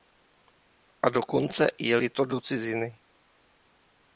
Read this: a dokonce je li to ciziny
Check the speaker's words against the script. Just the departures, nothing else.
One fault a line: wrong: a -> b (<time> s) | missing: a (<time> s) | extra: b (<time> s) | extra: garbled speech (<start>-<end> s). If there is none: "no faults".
extra: do (2.2 s)